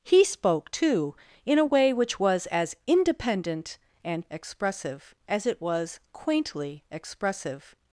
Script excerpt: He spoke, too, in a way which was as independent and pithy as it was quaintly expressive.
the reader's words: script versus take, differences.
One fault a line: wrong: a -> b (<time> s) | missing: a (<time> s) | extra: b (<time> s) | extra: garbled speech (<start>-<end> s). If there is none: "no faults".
wrong: pithy -> expressive (4.3 s)